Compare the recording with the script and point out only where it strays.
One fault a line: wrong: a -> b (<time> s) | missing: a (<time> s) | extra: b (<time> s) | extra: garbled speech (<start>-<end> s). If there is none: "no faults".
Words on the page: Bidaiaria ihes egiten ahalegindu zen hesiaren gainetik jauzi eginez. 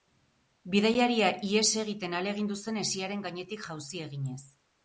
no faults